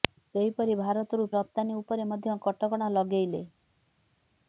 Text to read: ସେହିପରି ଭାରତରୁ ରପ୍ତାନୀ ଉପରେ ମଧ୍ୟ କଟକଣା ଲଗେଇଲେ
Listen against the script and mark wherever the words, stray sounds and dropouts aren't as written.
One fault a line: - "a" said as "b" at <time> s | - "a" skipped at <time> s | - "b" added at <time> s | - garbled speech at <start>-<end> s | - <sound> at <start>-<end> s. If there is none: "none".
none